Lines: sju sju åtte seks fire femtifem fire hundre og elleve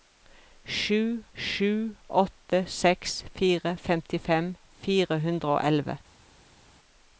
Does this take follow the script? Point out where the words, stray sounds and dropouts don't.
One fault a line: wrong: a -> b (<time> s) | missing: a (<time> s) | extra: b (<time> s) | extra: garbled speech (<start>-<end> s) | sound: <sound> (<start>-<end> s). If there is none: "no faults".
no faults